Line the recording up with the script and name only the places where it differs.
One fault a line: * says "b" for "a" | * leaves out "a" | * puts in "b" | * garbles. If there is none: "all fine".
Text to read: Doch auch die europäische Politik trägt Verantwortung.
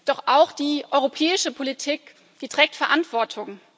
all fine